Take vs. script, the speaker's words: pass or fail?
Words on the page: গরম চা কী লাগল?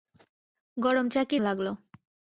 pass